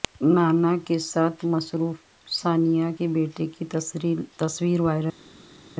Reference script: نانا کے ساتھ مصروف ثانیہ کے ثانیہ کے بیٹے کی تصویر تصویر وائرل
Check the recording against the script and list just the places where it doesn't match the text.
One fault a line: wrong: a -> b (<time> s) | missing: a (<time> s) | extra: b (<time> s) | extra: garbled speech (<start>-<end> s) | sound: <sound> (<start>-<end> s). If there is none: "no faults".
missing: ثانیہ کے (3.1 s)
missing: تصویر (4.8 s)